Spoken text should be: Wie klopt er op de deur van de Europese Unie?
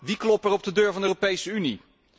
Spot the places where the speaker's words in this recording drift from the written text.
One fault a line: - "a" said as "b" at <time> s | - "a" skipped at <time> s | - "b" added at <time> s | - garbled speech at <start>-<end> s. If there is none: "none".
none